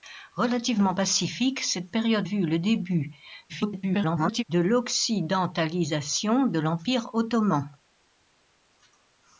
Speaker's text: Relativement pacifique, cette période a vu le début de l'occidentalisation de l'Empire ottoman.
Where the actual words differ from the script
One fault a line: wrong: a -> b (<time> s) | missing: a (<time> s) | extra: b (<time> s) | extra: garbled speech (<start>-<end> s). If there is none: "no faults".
missing: a (2.3 s)
extra: garbled speech (3.5-4.4 s)